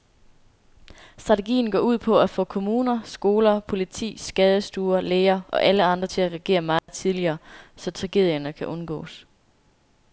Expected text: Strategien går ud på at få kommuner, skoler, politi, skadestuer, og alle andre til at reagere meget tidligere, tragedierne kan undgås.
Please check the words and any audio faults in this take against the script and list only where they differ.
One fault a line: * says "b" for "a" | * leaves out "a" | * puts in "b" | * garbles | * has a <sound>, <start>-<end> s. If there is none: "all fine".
* puts in "læger"
* has a dropout, 6.8-6.9 s
* puts in "så"